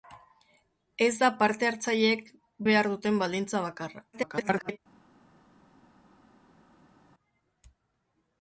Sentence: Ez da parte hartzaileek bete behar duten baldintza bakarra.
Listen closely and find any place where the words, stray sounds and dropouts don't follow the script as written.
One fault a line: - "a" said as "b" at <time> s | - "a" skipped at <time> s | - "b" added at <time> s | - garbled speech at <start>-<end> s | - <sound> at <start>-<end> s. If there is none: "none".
- "bete" skipped at 2.3 s
- garbled speech at 4.1-4.8 s